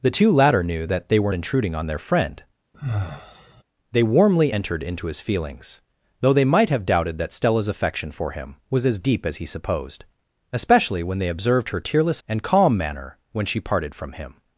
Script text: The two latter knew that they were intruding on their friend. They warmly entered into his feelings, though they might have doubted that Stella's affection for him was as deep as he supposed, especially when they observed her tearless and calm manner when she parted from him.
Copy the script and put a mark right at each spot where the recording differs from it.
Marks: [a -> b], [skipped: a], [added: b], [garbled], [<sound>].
The two latter knew that they were intruding on their friend. [sigh] They warmly entered into his feelings, though they might have doubted that Stella's affection for him was as deep as he supposed, especially when they observed her tearless and calm manner when she parted from him.